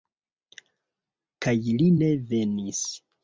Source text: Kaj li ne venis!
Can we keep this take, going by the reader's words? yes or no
yes